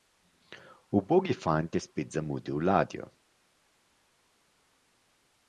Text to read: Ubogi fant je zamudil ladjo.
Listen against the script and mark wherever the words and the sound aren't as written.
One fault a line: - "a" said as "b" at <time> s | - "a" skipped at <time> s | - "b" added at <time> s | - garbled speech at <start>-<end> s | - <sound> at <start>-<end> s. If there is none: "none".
- "spet" added at 1.8 s